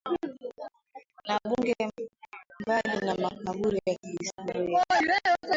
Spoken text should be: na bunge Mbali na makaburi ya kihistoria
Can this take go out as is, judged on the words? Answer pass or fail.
pass